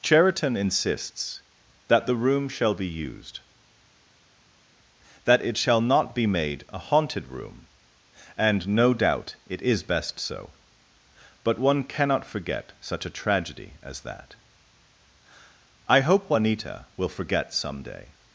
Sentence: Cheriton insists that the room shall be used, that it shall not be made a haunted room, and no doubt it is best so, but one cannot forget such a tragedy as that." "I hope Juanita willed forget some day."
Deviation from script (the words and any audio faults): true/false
true